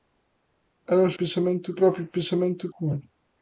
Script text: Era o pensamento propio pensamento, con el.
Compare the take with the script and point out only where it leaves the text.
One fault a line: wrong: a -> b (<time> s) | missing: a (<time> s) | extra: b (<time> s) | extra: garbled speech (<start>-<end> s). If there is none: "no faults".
no faults